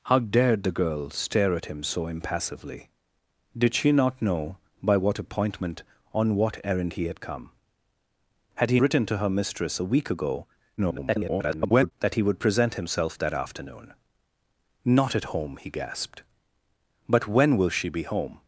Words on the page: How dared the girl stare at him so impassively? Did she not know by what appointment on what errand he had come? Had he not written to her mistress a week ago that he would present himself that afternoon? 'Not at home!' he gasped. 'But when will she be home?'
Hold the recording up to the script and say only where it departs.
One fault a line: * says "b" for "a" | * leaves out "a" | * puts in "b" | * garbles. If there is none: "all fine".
* leaves out "not"
* garbles